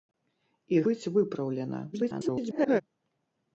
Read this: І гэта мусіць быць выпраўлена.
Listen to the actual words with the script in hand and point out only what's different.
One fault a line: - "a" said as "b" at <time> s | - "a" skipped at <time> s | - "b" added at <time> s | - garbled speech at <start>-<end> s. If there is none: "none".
- "гэта мусіць" skipped at 0.8 s
- garbled speech at 1.9-2.8 s